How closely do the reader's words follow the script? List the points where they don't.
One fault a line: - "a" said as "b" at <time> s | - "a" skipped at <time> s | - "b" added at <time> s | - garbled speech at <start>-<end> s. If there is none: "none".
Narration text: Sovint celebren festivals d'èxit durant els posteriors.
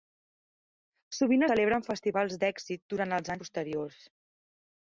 none